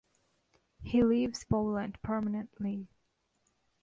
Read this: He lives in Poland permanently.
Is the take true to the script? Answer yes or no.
no